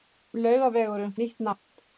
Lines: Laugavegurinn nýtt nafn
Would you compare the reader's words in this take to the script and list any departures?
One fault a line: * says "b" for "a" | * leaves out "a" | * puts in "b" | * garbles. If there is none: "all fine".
all fine